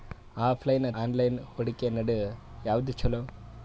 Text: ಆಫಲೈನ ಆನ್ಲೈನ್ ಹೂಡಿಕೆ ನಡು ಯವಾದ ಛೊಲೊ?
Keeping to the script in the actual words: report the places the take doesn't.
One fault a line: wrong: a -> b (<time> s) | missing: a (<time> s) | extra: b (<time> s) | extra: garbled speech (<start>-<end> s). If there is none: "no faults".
no faults